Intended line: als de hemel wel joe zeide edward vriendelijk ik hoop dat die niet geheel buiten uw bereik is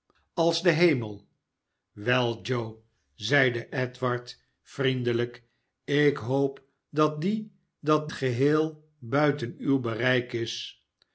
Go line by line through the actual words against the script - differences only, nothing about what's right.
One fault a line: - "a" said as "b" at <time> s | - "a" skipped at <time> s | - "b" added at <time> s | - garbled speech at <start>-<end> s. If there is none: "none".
- "niet" said as "dat" at 7.8 s